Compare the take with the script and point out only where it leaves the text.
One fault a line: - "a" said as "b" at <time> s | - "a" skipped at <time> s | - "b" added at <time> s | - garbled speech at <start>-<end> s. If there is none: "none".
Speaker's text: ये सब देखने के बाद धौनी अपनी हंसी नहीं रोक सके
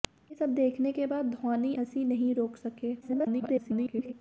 - "अपनी" skipped at 1.8 s
- garbled speech at 3.0-4.1 s